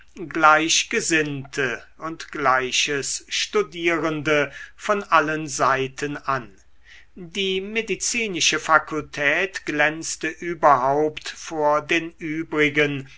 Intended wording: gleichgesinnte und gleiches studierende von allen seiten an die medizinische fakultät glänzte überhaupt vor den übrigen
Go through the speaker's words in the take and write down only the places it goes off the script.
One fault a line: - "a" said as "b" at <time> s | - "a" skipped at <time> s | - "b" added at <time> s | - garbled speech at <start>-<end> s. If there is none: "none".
none